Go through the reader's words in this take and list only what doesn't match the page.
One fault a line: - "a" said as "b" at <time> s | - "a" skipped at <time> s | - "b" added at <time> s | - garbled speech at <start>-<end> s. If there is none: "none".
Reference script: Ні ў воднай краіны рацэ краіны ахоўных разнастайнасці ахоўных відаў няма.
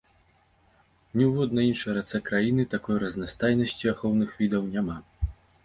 - "краіны" said as "іншай" at 1.7 s
- "ахоўных" said as "такой" at 2.7 s